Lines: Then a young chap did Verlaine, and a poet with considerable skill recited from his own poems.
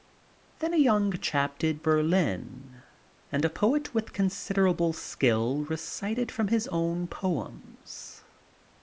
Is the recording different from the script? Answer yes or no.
no